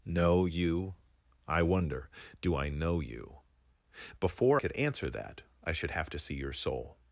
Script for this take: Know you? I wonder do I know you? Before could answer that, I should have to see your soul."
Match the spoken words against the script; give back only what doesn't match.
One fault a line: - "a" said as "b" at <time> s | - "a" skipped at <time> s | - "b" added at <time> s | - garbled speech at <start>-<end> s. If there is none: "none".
none